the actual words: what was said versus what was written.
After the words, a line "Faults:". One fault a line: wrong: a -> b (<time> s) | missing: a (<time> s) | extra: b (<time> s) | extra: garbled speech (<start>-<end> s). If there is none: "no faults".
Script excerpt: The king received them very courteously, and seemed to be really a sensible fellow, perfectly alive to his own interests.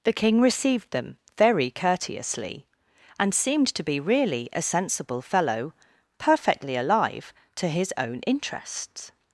The king received them very courteously, and seemed to be really a sensible fellow, perfectly alive to his own interests.
Faults:
no faults